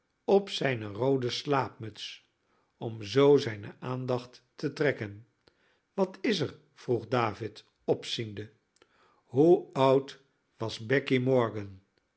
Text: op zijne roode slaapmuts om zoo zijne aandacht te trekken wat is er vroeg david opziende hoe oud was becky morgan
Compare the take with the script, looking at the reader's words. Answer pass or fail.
pass